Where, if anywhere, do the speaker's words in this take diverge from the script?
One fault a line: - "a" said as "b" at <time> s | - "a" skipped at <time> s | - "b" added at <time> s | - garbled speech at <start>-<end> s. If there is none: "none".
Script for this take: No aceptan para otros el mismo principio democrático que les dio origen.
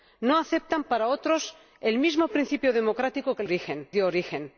- "les" said as "origen" at 3.4 s